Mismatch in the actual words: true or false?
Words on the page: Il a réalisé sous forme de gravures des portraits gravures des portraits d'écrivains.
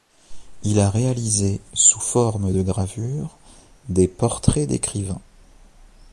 true